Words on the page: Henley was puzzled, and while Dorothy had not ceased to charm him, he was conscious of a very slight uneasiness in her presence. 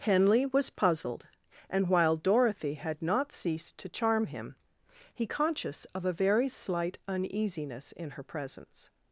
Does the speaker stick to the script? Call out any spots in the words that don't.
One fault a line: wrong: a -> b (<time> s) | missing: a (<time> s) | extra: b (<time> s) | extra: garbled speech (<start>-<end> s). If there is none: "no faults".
missing: was (5.3 s)